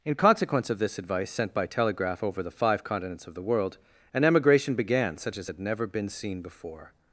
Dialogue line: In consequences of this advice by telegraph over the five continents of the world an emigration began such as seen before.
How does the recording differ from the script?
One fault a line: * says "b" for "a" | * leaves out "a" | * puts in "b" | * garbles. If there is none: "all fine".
* says "consequence" for "consequences"
* puts in "sent"
* puts in "had never been"